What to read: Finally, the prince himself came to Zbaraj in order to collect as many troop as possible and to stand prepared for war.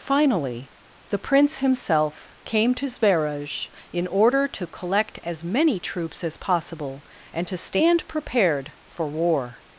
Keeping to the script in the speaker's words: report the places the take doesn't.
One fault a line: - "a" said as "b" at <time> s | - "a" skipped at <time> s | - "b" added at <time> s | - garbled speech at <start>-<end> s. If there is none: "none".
- "troop" said as "troops" at 5.8 s